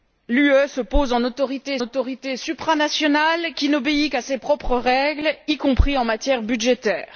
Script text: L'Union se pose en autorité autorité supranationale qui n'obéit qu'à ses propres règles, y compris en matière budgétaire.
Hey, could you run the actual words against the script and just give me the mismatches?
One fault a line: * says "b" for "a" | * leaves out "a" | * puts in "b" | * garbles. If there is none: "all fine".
all fine